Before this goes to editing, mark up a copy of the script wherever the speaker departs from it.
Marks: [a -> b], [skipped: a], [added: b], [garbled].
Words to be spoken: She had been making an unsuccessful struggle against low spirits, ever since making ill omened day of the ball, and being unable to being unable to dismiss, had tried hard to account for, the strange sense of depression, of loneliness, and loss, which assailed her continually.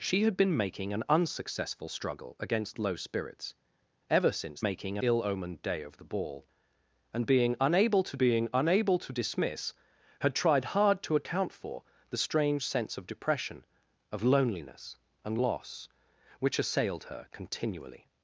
She had been making an unsuccessful struggle against low spirits, ever since making ill omened day of the ball, and being unable to being unable to dismiss, had tried hard to account for, the strange sense of depression, of loneliness, and loss, which assailed her continually.